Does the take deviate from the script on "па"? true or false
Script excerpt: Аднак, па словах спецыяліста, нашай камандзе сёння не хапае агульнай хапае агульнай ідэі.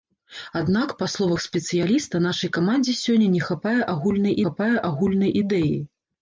false